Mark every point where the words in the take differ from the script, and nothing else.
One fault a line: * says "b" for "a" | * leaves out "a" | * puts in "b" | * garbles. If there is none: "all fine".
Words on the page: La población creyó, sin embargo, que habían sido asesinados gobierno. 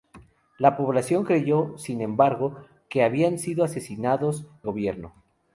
all fine